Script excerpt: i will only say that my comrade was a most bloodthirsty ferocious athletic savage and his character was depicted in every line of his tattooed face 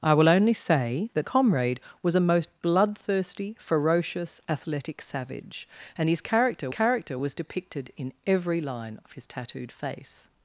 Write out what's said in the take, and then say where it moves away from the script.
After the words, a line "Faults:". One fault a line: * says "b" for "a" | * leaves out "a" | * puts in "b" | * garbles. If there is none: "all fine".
i will only say that comrade was a most bloodthirsty ferocious athletic savage and his character character was depicted in every line of his tattooed face
Faults:
* leaves out "my"
* puts in "character"